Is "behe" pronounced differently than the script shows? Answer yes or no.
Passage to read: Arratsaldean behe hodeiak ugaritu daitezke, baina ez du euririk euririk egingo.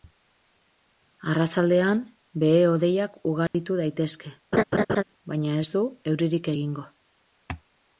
no